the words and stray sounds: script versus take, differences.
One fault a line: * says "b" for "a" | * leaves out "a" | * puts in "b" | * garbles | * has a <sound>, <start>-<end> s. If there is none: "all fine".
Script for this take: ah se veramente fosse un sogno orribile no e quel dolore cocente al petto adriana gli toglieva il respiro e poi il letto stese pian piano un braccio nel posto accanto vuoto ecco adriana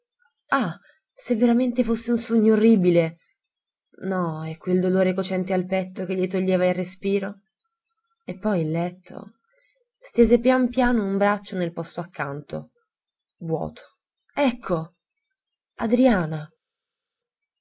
* says "che" for "adriana"